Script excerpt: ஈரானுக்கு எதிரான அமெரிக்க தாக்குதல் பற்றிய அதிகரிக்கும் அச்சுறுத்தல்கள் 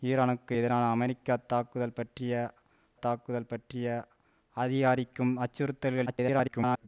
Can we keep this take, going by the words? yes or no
no